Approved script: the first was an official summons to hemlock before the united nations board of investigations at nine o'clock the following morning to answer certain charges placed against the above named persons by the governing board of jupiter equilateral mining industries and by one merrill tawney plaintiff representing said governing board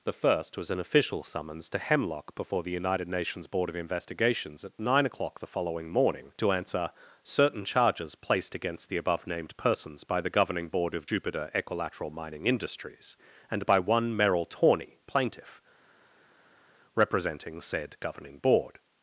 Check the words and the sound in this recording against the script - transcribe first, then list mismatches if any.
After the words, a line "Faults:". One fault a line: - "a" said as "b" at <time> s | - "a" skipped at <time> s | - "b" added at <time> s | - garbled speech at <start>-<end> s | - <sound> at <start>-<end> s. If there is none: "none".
the first was an official summons to hemlock before the united nations board of investigations at nine o'clock the following morning to answer certain charges placed against the above named persons by the governing board of jupiter equilateral mining industries and by one merrill tawney plaintiff representing said governing board
Faults:
none